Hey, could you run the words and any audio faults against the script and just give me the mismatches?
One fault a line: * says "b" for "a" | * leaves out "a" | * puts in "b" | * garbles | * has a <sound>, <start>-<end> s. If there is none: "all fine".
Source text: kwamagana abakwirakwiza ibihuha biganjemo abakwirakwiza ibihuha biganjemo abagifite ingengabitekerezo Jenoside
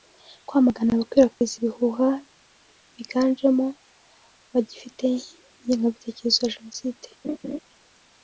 * has a dropout, 1.3-1.4 s
* leaves out "abakwirakwiza ibihuha biganjemo"
* puts in "ya"
* has a laugh, 7.2-7.6 s